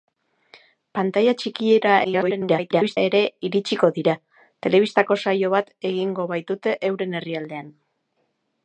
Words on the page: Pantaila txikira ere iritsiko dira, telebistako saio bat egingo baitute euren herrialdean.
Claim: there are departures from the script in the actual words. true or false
true